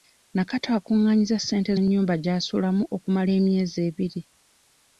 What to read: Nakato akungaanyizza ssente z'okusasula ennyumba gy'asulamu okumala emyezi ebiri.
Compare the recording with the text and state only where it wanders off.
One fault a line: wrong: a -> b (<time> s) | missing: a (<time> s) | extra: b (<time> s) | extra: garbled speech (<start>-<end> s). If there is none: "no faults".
missing: z'okusasula (1.7 s)